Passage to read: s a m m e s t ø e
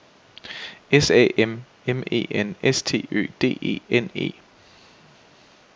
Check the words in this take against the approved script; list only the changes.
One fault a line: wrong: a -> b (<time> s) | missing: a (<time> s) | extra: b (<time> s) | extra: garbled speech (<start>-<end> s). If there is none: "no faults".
extra: n (2.3 s)
extra: d e n (3.4 s)